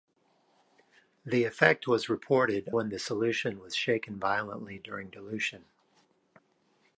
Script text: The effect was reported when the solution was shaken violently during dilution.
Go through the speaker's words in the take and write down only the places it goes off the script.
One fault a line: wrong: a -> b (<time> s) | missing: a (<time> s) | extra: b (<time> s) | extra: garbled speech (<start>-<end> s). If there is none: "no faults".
no faults